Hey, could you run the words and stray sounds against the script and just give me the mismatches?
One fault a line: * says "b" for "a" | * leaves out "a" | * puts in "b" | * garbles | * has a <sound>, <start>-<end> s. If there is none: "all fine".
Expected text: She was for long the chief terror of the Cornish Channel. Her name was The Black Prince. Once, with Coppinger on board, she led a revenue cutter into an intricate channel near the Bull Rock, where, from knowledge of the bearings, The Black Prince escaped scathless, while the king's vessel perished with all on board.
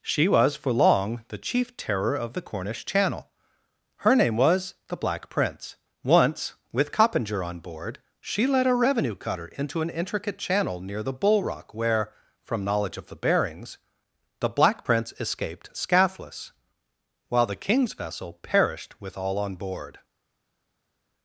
all fine